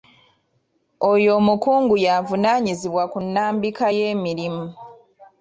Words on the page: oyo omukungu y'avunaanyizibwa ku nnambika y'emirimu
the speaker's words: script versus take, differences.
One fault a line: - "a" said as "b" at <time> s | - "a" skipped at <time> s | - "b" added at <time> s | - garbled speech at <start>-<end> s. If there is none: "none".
none